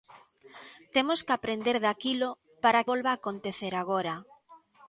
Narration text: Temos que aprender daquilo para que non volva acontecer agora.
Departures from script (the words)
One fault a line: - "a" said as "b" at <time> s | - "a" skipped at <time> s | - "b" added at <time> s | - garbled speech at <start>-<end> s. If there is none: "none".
- "que non" skipped at 2.9 s